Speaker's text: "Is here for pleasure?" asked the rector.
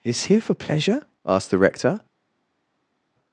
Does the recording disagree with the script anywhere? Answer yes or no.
no